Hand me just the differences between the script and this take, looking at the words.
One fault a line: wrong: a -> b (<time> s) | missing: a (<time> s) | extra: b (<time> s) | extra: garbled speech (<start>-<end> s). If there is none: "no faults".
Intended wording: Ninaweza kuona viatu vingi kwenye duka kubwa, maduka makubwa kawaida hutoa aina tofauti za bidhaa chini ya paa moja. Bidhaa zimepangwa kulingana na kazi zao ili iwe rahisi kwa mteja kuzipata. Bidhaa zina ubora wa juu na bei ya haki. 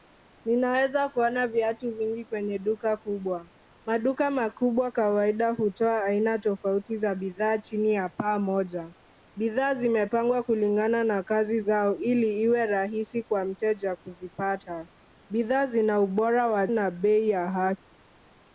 missing: juu (16.7 s)